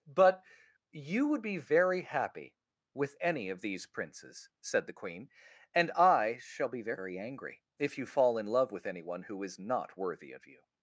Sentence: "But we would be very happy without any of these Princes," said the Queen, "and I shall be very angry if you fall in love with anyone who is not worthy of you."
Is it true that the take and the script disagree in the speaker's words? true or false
true